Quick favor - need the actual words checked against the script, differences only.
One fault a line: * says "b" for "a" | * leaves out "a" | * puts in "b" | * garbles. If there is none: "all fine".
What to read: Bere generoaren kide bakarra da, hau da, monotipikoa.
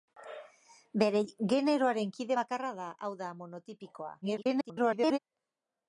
* garbles